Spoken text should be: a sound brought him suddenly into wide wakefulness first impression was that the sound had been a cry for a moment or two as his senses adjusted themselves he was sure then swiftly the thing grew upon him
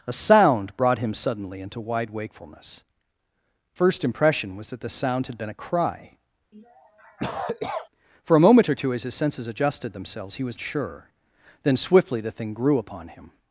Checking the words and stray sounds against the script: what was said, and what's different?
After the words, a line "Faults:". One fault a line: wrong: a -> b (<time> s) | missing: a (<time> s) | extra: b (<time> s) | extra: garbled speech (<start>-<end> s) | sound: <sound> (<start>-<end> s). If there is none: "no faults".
a sound brought him suddenly into wide wakefulness first impression was that the sound had been a cry for a moment or two as his senses adjusted themselves he was sure then swiftly the thing grew upon him
Faults:
sound: cough (6.5-7.9 s)